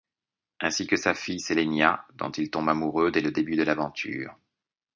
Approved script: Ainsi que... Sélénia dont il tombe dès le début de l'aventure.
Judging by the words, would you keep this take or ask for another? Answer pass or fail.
fail